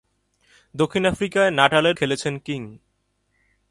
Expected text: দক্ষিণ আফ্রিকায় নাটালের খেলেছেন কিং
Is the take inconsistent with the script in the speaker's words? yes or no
no